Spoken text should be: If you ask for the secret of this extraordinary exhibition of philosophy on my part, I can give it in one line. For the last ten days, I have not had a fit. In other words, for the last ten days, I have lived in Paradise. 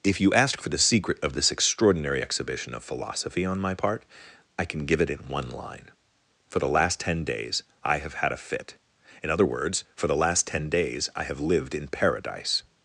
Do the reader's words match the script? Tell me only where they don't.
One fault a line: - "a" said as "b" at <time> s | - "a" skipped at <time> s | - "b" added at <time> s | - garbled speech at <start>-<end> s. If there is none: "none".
- "not" skipped at 8.1 s